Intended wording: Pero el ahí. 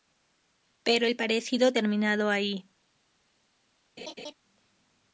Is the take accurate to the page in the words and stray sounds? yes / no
no